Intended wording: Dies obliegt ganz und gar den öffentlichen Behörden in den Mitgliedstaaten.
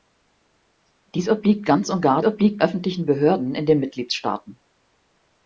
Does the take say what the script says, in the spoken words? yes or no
no